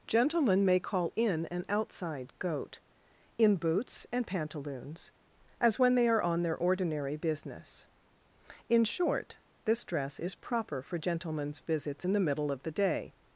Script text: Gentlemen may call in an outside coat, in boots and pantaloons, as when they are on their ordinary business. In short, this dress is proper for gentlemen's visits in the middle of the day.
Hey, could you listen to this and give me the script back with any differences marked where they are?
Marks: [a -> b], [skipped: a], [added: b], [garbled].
Gentlemen may call in an outside [coat, -> goat] in boots and pantaloons, as when they are on their ordinary business. In short, this dress is proper for gentlemen's visits in the middle of the day.